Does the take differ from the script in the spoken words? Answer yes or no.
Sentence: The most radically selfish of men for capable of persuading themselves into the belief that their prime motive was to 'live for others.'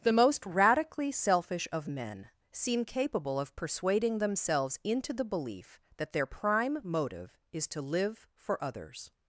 yes